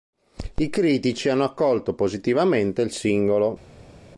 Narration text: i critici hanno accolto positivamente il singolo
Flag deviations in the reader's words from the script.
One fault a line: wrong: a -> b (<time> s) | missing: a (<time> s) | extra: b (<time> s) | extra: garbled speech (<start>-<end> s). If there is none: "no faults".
no faults